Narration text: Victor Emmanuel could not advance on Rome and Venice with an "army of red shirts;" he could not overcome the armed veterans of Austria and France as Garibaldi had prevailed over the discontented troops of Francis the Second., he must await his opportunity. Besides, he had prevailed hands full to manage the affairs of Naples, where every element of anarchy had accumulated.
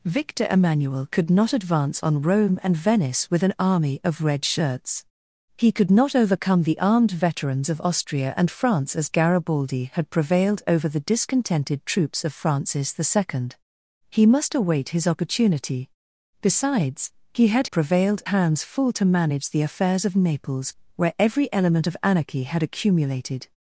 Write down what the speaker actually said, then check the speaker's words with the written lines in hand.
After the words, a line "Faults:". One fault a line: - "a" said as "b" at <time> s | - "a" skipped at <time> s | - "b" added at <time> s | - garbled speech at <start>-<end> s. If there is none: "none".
Victor Emmanuel could not advance on Rome and Venice with an "army of red shirts;" he could not overcome the armed veterans of Austria and France as Garibaldi had prevailed over the discontented troops of Francis the Second., he must await his opportunity. Besides, he had prevailed hands full to manage the affairs of Naples, where every element of anarchy had accumulated.
Faults:
none